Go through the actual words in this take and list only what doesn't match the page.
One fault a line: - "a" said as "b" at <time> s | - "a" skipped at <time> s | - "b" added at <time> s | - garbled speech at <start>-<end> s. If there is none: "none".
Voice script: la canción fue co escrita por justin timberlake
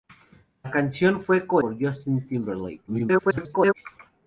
- "escrita" skipped at 1.6 s
- garbled speech at 2.9-3.7 s